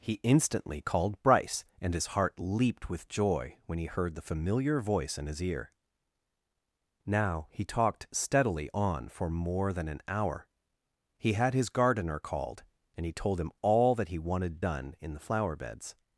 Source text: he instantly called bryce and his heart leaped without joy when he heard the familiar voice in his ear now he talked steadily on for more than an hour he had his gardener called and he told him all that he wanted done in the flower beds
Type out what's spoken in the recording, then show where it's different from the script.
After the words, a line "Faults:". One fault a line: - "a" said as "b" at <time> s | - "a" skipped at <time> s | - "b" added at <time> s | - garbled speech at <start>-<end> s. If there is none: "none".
he instantly called bryce and his heart leaped with joy when he heard the familiar voice in his ear now he talked steadily on for more than an hour he had his gardener called and he told him all that he wanted done in the flower beds
Faults:
- "without" said as "with" at 2.9 s